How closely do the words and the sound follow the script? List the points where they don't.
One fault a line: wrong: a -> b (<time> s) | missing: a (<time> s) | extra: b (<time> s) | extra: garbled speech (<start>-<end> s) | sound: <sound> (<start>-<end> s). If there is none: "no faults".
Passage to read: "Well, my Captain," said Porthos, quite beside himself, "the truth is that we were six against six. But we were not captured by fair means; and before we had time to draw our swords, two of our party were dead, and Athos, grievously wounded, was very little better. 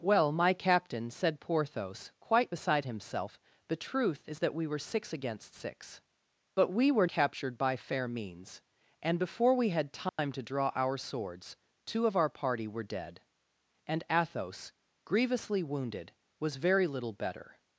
missing: not (7.1 s)
sound: dropout (10.1-10.2 s)